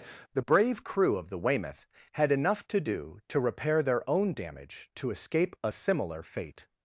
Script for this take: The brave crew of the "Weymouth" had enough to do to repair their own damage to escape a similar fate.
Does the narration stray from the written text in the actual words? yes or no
no